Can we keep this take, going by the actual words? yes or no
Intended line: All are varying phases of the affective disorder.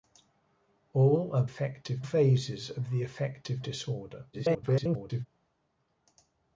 no